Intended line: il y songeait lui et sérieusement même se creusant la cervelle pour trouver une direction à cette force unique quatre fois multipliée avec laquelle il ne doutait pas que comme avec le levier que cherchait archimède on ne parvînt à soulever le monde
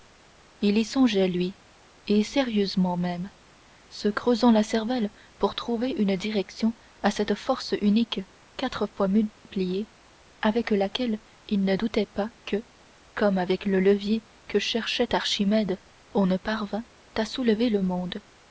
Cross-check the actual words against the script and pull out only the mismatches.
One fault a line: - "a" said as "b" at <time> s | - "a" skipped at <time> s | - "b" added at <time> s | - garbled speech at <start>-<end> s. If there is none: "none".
none